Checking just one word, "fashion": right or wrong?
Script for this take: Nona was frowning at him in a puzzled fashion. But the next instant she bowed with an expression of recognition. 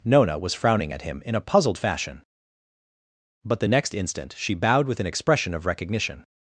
right